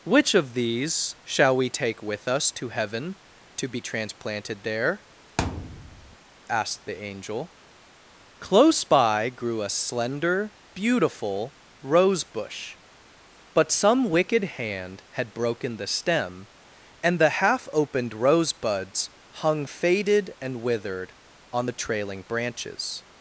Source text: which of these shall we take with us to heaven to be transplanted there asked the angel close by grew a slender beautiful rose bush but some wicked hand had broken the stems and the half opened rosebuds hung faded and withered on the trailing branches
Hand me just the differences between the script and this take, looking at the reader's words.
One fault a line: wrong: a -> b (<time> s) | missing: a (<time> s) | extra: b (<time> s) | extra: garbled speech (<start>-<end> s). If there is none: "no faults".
wrong: stems -> stem (15.9 s)